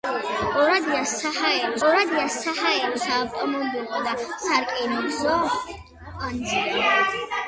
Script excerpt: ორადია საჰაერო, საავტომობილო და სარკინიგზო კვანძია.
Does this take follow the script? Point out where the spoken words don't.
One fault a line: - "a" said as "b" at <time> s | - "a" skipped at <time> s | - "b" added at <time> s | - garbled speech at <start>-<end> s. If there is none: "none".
- "ორადია საჰაერო" added at 1.9 s